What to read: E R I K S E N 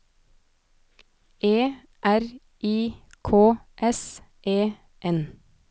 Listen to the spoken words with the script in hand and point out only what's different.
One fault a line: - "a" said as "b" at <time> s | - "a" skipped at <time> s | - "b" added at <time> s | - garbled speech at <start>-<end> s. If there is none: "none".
none